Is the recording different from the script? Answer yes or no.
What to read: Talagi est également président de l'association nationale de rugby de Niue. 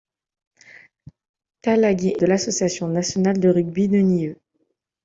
yes